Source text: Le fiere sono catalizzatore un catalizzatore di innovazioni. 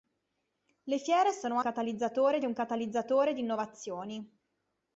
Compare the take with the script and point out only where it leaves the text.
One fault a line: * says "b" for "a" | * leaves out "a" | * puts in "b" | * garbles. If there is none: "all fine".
all fine